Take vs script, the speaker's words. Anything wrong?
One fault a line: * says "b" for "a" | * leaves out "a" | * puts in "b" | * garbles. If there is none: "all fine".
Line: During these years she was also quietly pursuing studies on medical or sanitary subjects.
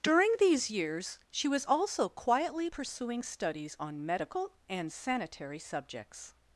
* says "and" for "or"